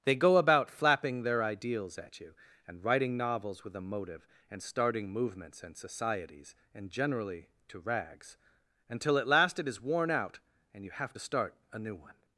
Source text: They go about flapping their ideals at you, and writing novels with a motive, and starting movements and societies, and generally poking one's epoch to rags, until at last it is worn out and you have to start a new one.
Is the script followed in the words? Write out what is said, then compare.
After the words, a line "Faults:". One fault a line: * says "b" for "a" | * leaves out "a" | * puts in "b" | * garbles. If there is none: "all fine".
They go about flapping their ideals at you, and writing novels with a motive, and starting movements and societies, and generally to rags, until at last it is worn out and you have to start a new one.
Faults:
* leaves out "poking one's epoch"